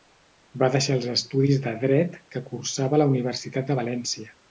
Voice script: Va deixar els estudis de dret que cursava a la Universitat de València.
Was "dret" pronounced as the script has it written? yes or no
yes